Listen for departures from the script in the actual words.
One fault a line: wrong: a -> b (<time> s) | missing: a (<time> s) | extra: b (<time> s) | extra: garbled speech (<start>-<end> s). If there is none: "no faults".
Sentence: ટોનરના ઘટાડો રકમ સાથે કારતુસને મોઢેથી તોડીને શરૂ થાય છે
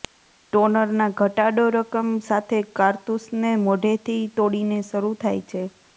no faults